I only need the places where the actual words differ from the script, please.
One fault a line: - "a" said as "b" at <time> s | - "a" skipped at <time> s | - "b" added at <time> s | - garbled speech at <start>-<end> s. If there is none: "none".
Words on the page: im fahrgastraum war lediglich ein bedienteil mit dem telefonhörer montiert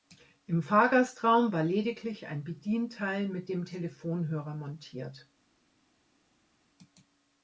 none